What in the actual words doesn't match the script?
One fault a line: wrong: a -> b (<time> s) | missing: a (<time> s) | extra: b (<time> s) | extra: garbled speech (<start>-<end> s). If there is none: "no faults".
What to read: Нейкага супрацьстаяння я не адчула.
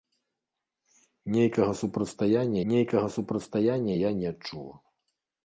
extra: нейкага супрацьстаяння (2.7 s)